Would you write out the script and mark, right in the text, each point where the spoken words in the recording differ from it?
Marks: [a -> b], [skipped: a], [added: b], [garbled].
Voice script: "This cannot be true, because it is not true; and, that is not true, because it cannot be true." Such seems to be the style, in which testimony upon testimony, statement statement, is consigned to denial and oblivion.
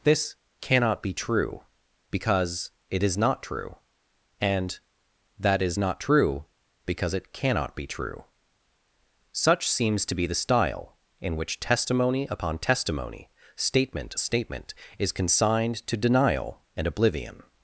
"This cannot be true, because it is not true; and, that is not true, because it cannot be true." Such seems to be the style, in which testimony upon testimony, statement statement, is consigned to denial and oblivion.